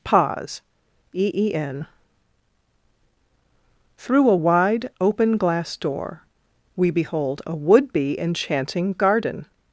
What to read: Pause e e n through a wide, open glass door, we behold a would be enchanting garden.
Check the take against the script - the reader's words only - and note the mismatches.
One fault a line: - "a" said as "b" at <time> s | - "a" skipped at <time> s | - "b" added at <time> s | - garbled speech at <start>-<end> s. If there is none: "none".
none